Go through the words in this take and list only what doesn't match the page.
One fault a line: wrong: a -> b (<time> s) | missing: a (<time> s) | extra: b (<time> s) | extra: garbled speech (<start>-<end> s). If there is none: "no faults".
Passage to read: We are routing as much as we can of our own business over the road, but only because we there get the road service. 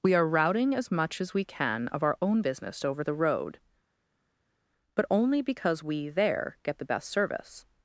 wrong: road -> best (6.8 s)